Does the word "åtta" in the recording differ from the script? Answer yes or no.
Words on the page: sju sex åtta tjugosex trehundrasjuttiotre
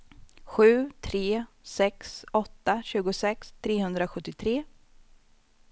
no